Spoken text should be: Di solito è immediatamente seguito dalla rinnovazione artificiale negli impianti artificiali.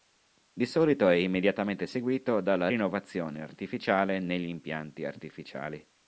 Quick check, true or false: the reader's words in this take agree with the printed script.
true